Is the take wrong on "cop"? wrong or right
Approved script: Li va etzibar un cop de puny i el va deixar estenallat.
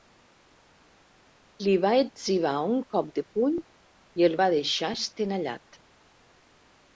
right